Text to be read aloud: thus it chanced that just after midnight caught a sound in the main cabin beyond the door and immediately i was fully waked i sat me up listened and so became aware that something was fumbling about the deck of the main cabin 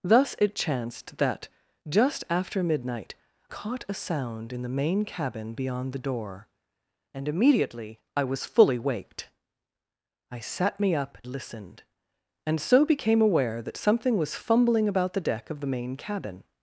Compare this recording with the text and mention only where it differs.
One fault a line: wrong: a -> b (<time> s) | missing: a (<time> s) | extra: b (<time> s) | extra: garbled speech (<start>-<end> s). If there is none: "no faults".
no faults